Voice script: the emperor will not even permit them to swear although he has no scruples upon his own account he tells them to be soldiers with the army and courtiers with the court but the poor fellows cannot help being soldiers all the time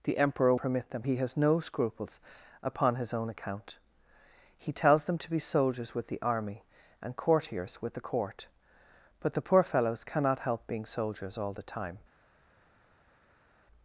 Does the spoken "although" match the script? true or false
false